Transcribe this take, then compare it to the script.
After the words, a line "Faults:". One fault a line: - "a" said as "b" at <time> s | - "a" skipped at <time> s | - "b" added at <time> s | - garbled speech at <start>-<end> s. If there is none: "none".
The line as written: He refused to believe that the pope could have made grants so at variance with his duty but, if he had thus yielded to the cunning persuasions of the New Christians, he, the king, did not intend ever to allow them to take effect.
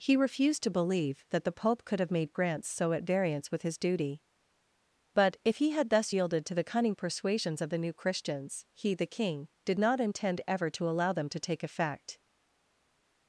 He refused to believe that the pope could have made grants so at variance with his duty but, if he had thus yielded to the cunning persuasions of the New Christians, he, the king, did not intend ever to allow them to take effect.
Faults:
none